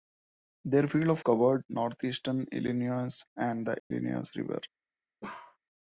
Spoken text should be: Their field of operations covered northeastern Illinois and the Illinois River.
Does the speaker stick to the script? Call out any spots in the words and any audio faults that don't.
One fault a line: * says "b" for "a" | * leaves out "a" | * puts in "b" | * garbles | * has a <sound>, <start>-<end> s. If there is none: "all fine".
* leaves out "operations"
* has a dropout, 3.8-3.9 s
* has a bark, 5.2-5.6 s